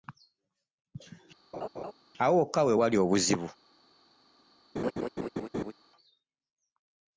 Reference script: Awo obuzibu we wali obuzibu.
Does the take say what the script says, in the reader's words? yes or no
no